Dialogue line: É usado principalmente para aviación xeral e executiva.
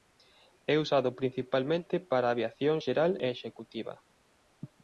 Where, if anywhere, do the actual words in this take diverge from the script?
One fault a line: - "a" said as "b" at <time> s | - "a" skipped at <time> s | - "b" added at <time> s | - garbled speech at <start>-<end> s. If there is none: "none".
none